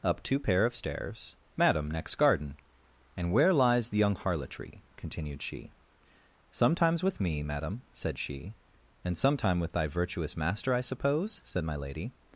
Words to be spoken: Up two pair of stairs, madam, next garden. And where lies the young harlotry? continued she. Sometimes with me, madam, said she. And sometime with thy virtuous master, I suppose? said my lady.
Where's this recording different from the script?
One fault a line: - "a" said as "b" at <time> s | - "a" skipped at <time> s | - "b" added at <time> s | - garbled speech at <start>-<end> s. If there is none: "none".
none